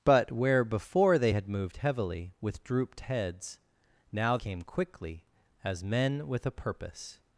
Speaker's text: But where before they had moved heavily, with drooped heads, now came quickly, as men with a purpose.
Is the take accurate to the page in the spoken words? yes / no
yes